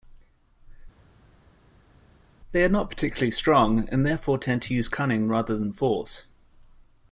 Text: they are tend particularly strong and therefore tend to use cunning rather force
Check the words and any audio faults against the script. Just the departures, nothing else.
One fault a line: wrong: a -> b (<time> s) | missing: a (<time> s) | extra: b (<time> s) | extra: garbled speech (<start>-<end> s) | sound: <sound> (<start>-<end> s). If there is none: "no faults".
wrong: tend -> not (2.7 s)
extra: than (5.6 s)